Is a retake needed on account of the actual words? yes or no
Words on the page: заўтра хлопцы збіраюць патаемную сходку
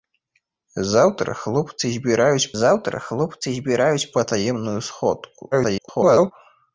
yes